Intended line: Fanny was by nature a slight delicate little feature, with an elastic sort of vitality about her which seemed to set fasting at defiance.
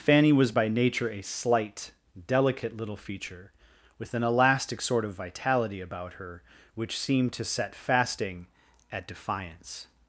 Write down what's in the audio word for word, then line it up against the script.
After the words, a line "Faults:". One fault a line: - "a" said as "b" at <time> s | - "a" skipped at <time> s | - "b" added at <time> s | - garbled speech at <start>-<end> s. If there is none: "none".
Fanny was by nature a slight delicate little feature, with an elastic sort of vitality about her which seemed to set fasting at defiance.
Faults:
none